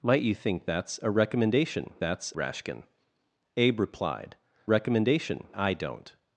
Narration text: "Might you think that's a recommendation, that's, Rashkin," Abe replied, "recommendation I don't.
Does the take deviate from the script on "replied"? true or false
false